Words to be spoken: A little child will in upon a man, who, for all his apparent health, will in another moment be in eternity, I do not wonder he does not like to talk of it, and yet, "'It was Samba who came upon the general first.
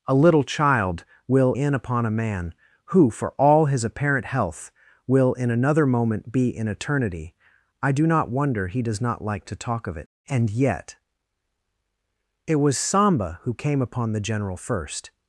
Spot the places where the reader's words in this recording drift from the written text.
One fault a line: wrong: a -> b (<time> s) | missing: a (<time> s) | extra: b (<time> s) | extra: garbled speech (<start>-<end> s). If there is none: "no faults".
no faults